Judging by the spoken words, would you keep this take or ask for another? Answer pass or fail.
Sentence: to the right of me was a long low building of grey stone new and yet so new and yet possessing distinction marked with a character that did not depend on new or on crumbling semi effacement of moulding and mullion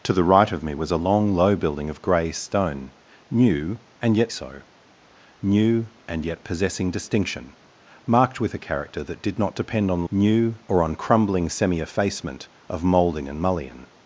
pass